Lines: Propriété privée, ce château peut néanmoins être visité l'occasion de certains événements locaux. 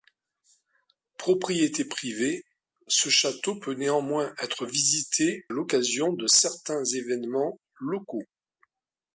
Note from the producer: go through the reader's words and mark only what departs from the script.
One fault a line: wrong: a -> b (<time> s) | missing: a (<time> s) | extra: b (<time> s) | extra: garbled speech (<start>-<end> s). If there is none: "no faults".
no faults